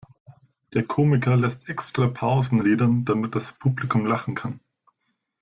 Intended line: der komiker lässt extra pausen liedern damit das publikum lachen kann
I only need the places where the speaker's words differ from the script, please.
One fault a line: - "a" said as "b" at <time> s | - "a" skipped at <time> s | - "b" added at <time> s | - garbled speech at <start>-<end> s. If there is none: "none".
none